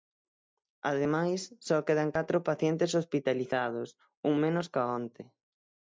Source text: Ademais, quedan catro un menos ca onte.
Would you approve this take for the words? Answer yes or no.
no